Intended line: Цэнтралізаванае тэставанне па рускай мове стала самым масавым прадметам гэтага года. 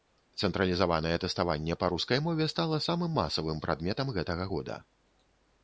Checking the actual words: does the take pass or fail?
pass